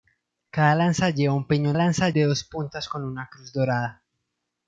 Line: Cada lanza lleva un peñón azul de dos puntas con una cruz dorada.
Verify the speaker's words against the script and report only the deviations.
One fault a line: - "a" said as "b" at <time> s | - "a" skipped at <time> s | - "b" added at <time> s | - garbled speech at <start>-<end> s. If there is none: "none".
- "azul" said as "lanza" at 1.7 s